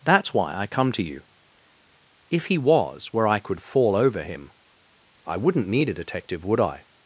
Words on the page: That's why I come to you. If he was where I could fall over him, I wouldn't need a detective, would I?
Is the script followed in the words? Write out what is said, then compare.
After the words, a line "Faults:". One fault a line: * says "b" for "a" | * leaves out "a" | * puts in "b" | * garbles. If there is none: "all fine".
That's why I come to you. If he was where I could fall over him, I wouldn't need a detective, would I?
Faults:
all fine